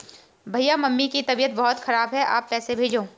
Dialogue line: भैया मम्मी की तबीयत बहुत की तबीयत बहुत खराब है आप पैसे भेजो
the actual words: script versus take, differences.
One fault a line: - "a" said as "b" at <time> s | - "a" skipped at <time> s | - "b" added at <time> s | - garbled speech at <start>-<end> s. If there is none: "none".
- "की तबीयत बहुत" skipped at 1.8 s